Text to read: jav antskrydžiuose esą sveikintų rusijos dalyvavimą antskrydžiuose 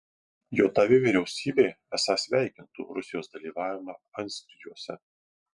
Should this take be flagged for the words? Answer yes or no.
yes